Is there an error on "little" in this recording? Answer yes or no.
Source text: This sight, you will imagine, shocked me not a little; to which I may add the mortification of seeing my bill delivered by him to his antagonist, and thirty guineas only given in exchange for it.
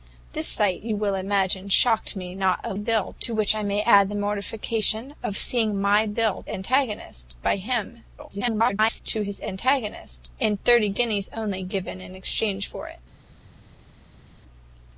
yes